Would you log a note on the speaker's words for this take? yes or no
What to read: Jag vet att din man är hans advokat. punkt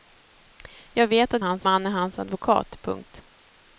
yes